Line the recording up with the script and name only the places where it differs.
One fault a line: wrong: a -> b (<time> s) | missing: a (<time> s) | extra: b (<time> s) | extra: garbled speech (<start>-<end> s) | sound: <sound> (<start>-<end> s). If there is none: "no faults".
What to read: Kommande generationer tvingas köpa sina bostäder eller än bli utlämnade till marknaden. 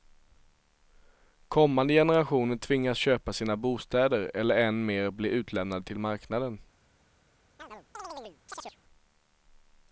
extra: mer (4.8 s)
sound: chirp (7.6-8.8 s)